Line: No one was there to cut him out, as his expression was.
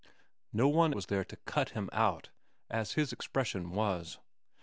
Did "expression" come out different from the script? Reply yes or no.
no